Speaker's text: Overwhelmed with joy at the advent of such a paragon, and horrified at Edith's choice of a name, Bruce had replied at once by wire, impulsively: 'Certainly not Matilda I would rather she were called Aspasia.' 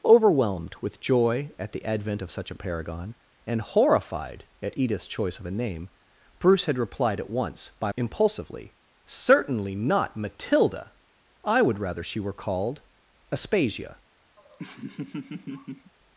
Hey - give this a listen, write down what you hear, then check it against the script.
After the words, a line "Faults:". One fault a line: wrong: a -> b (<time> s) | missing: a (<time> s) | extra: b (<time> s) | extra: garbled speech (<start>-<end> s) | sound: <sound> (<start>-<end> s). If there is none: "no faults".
Overwhelmed with joy at the advent of such a paragon, and horrified at Edith's choice of a name, Bruce had replied at once by impulsively: 'Certainly not Matilda I would rather she were called Aspasia.'
Faults:
missing: wire (7.9 s)
sound: laugh (14.4-15.9 s)